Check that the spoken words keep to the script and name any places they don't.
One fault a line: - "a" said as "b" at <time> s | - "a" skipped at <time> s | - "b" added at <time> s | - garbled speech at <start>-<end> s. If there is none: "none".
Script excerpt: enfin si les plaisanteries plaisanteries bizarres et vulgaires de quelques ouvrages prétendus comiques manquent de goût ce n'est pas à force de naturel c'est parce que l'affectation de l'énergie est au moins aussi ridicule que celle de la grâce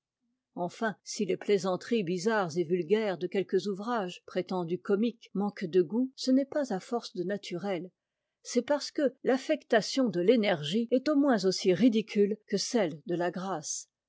- "plaisanteries" skipped at 2.0 s